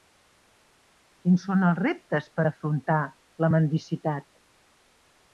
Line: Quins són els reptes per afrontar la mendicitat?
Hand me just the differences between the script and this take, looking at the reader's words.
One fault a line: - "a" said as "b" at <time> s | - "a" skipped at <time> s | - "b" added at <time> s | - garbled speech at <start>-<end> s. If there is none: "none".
none